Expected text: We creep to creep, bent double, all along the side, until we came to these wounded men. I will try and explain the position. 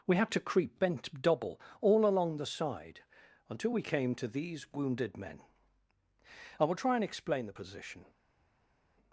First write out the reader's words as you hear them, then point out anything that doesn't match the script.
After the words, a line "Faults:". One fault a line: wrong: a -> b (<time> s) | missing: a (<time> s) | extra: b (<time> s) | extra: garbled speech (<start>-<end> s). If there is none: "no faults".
We had to creep, bent double, all along the side, until we came to these wounded men. I will try and explain the position.
Faults:
wrong: creep -> had (0.2 s)